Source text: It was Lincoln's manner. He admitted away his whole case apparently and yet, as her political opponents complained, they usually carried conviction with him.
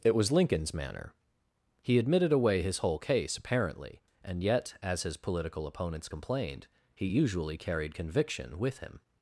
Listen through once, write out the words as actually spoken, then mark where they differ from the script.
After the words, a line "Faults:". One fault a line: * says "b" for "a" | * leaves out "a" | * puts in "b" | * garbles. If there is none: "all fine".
It was Lincoln's manner. He admitted away his whole case apparently and yet, as his political opponents complained, he usually carried conviction with him.
Faults:
* says "his" for "her"
* says "he" for "they"